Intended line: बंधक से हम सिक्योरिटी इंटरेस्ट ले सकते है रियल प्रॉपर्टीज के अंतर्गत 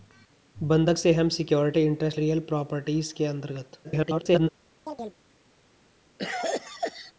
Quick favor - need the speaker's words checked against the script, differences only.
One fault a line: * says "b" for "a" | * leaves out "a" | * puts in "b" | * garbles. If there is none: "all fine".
* leaves out "ले सकते है"
* garbles